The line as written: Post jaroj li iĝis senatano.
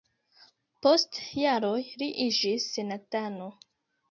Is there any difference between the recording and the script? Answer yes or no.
no